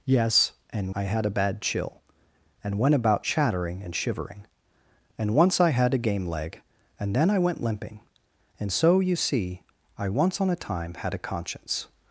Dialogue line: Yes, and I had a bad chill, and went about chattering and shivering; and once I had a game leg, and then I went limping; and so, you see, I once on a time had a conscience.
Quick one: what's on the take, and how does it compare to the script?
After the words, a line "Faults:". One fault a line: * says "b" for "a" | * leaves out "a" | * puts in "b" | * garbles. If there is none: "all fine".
Yes, and I had a bad chill, and went about chattering and shivering; and once I had a game leg, and then I went limping; and so, you see, I once on a time had a conscience.
Faults:
all fine